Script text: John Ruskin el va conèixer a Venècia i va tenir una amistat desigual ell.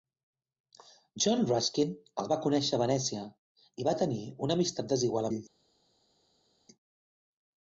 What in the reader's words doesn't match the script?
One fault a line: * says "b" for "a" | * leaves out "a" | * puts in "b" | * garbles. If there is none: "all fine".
all fine